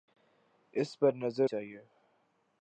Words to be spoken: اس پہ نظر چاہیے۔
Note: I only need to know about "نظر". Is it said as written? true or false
true